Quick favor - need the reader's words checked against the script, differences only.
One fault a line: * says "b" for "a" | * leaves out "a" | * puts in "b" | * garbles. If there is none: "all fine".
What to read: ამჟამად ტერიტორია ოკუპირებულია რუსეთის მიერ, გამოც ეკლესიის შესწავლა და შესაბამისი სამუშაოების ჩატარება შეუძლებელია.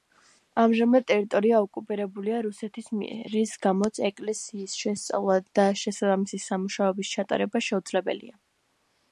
* puts in "რის"